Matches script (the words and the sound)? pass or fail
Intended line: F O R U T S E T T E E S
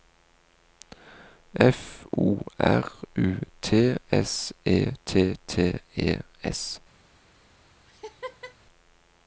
fail